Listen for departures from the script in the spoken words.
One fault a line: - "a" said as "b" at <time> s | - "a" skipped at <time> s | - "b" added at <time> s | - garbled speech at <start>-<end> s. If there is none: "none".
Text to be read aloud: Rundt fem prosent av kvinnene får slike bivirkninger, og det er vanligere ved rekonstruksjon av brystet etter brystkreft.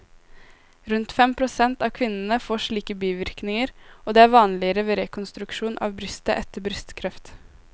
none